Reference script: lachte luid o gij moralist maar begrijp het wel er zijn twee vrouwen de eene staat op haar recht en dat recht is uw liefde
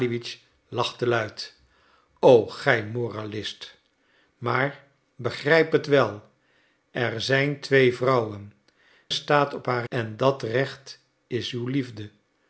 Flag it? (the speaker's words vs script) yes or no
yes